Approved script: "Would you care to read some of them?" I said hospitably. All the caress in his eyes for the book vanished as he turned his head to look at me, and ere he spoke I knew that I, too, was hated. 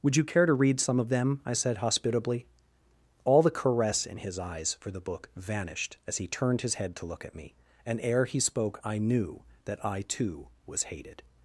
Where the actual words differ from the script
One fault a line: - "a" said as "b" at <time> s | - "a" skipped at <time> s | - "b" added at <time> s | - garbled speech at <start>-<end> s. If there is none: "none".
none